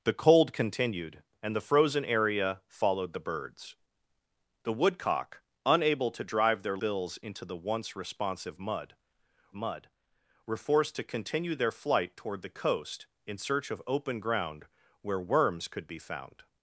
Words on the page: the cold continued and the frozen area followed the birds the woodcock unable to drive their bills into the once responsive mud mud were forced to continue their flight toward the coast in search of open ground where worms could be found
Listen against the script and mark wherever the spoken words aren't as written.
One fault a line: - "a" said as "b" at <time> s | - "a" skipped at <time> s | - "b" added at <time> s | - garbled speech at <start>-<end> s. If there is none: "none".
none